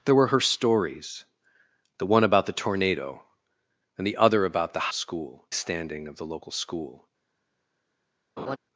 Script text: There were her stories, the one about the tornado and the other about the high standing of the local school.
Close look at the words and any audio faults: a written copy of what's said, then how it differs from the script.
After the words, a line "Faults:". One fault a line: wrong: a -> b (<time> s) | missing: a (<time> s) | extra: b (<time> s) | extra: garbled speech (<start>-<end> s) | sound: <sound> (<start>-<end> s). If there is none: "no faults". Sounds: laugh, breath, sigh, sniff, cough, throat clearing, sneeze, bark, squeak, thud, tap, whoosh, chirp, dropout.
There were her stories, the one about the tornado and the other about the school standing of the local school.
Faults:
wrong: high -> school (4.9 s)
sound: laugh (8.4-8.6 s)